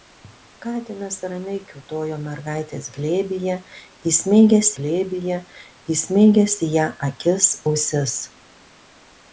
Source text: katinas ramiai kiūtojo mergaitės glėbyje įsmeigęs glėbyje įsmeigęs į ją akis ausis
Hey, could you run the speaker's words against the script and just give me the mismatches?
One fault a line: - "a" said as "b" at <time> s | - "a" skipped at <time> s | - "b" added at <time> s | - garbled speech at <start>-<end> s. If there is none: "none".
none